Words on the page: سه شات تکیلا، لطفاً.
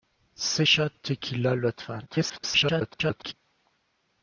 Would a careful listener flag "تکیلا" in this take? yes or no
no